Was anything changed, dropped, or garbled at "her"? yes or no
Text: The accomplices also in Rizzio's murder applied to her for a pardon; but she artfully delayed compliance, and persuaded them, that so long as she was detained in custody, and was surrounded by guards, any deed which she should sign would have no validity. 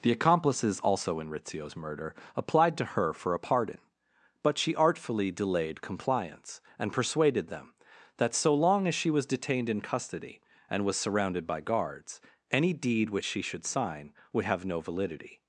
no